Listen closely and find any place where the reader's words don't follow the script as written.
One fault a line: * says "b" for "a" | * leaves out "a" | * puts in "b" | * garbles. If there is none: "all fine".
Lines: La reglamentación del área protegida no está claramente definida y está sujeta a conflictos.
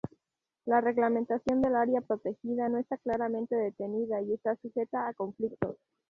all fine